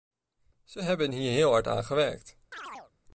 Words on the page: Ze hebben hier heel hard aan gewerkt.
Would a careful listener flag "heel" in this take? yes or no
no